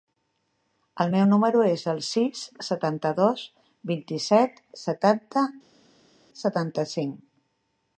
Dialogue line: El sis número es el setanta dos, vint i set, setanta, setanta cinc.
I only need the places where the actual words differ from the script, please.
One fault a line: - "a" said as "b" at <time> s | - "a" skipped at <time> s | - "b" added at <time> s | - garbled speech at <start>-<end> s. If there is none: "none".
- "sis" said as "meu" at 1.1 s
- "sis" added at 2.1 s